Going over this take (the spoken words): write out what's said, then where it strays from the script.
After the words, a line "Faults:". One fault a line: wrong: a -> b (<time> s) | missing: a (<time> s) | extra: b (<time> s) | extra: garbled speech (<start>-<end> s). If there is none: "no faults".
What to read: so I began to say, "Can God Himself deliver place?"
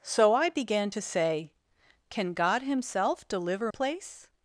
so I began to say, "Can God Himself deliver place?"
Faults:
no faults